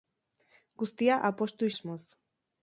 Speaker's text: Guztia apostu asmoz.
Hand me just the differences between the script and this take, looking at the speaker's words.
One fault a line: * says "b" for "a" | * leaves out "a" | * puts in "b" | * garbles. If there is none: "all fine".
all fine